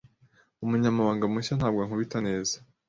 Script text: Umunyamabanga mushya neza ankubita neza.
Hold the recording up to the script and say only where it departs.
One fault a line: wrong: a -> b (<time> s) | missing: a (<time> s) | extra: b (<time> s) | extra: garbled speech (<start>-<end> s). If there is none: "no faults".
wrong: neza -> ntabwo (1.6 s)